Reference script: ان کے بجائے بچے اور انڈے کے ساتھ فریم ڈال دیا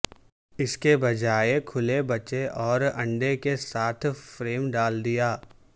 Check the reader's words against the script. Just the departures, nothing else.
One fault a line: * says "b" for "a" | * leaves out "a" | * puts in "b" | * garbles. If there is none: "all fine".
* says "اس" for "ان"
* puts in "کھلے"